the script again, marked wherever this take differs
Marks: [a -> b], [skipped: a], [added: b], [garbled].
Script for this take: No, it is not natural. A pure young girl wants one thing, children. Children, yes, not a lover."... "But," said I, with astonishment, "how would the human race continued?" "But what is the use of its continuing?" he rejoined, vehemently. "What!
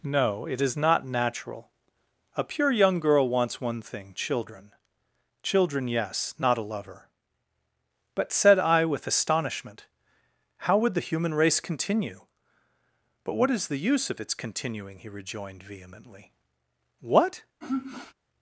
No, it is not natural. A pure young girl wants one thing, children. Children, yes, not a lover."... "But," said I, with astonishment, "how would the human race [continued?" -> continue] "But what is the use of its continuing?" he rejoined, vehemently. "What!